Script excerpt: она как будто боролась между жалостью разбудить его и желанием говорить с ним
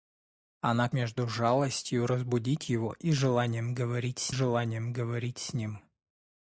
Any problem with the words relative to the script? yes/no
yes